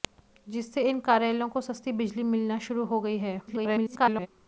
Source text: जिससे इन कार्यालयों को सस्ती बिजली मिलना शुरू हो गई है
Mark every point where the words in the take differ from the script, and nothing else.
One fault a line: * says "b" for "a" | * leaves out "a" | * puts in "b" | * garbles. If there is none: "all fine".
* garbles